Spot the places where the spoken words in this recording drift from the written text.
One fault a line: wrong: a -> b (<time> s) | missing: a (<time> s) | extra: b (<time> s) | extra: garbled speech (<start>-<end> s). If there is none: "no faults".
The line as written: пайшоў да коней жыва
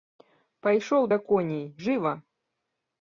no faults